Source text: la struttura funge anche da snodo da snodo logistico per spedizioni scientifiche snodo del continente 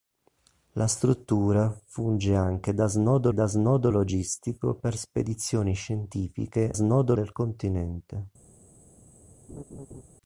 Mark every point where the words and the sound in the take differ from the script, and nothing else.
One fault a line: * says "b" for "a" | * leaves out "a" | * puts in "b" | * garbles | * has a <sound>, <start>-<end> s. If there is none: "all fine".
* has a laugh, 9.5-10.0 s